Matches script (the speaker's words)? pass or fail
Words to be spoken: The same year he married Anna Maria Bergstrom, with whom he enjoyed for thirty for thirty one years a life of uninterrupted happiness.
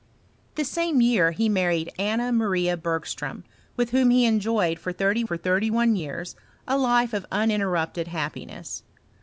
pass